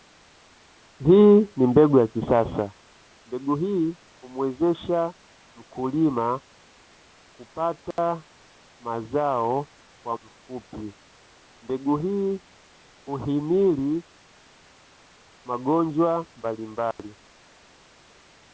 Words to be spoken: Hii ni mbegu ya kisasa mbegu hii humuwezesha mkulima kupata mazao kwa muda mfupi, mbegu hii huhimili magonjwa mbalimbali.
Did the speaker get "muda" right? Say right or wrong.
wrong